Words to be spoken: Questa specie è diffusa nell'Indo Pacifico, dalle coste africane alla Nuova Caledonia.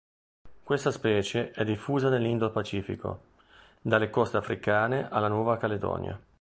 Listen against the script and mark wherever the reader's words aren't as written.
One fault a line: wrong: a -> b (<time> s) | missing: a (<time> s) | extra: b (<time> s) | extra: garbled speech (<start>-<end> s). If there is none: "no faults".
no faults